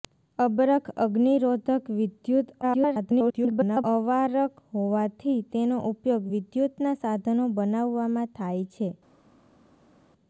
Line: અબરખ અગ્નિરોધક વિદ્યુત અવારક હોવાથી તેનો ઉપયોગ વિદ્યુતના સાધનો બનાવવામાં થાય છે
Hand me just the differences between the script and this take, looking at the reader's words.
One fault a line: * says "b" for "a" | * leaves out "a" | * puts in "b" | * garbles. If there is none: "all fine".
* garbles